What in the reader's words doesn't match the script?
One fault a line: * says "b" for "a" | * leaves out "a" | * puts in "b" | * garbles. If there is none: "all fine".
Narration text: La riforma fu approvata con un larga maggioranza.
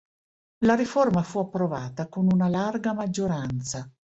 * says "una" for "un"